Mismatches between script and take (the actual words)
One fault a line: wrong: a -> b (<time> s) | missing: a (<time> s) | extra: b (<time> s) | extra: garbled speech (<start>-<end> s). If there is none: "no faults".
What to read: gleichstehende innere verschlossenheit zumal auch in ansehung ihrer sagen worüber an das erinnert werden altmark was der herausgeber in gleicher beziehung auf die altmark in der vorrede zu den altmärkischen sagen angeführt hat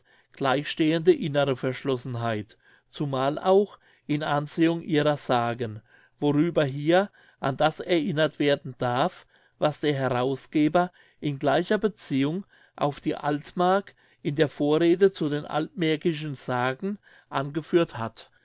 extra: hier (6.7 s)
wrong: altmark -> darf (8.8 s)